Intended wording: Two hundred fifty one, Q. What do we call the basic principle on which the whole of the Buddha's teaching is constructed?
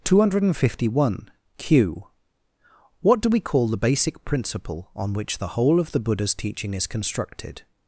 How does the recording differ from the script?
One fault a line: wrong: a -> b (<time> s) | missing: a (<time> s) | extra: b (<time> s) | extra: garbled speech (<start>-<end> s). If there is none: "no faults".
no faults